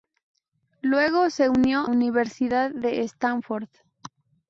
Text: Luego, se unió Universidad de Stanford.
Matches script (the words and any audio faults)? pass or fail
pass